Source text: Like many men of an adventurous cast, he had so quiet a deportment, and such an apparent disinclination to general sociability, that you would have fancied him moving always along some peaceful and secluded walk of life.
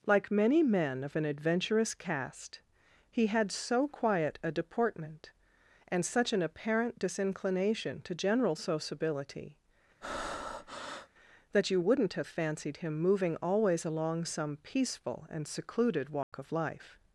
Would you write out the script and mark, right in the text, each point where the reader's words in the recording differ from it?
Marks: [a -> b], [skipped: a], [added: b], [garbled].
Like many men of an adventurous cast, he had so quiet a deportment, and such an apparent disinclination to general sociability, that you [would -> wouldn't] have fancied him moving always along some peaceful and secluded walk of life.